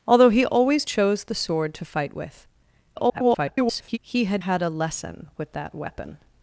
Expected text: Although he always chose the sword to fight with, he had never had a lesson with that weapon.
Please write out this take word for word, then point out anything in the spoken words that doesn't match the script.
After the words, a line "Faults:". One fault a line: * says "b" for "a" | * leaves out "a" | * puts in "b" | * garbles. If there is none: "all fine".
Although he always chose the sword to fight with, [garbled] he had had a lesson with that weapon.
Faults:
* garbles
* leaves out "never"